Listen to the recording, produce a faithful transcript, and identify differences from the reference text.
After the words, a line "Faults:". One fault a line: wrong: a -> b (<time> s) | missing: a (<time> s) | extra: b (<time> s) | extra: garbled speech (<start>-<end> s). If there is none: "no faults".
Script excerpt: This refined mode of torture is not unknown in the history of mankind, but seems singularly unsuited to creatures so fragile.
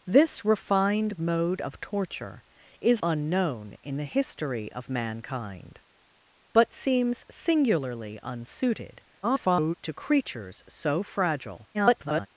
This refined mode of torture is unknown in the history of mankind, but seems singularly unsuited [garbled] to creatures so fragile. [garbled]
Faults:
missing: not (3.0 s)
extra: garbled speech (9.2-9.8 s)
extra: garbled speech (11.7-12.3 s)